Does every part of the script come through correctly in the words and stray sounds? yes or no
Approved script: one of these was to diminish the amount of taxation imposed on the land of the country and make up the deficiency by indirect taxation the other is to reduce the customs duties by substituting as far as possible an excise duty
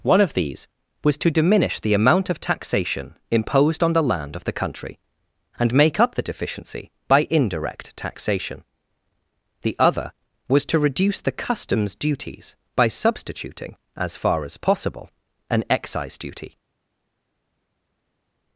no